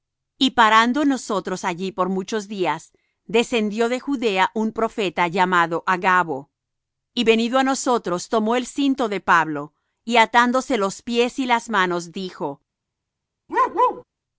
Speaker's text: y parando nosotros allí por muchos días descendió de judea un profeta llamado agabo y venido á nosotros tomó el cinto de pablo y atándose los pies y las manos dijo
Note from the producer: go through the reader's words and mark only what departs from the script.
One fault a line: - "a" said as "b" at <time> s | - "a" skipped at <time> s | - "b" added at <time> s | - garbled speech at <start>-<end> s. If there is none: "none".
none